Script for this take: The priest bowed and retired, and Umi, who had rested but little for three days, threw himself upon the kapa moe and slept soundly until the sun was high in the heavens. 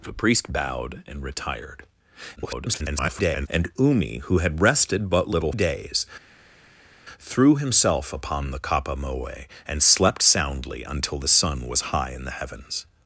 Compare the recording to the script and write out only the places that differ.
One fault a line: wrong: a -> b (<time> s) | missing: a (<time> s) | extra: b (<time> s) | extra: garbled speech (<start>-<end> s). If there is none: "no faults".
extra: garbled speech (2.4-3.5 s)
missing: for three (5.5 s)